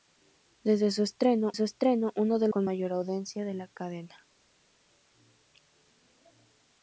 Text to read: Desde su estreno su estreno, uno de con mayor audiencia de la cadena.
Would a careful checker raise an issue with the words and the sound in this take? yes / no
no